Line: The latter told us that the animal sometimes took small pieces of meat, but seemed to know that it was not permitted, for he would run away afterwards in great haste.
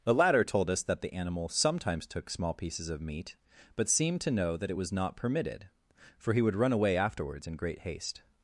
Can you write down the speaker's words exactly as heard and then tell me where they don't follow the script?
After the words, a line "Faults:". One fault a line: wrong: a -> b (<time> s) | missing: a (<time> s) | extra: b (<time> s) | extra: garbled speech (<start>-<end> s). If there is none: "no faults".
The latter told us that the animal sometimes took small pieces of meat, but seemed to know that it was not permitted, for he would run away afterwards in great haste.
Faults:
no faults